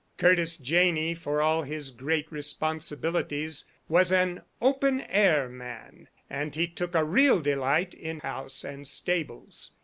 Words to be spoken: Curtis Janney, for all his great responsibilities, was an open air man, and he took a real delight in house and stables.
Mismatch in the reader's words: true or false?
false